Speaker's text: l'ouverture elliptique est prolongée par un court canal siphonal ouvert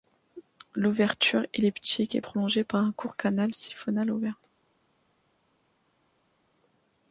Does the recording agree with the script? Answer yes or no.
yes